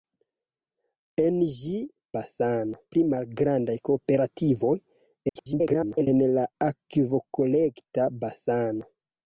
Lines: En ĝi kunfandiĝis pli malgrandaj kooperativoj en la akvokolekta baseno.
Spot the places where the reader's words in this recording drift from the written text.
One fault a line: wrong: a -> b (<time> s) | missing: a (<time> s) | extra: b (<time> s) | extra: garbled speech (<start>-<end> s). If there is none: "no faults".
wrong: kunfandiĝis -> baseno (2.2 s)
extra: garbled speech (5.3-6.1 s)